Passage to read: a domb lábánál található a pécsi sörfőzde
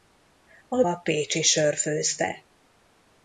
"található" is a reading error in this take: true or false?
true